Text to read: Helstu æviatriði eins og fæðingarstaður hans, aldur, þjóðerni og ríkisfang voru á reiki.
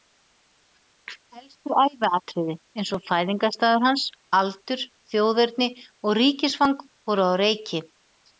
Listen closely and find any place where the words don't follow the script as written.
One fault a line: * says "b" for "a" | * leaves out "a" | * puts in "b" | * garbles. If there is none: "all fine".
all fine